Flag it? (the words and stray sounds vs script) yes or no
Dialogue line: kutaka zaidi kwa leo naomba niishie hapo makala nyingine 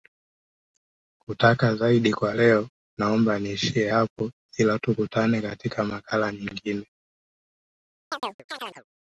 yes